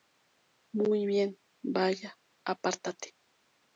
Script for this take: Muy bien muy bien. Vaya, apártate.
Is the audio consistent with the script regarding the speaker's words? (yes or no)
no